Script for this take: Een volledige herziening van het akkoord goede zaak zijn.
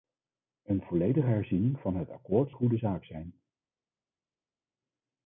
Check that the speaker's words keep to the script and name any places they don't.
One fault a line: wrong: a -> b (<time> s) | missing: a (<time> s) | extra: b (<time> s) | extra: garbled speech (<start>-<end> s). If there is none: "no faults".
no faults